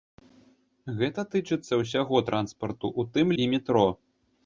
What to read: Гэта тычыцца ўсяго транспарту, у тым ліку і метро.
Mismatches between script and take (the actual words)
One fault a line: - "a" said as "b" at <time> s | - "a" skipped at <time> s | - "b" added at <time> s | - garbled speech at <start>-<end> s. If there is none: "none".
- "ліку" skipped at 3.3 s